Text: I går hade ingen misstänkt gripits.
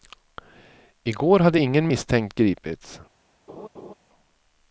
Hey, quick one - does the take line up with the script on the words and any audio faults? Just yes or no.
no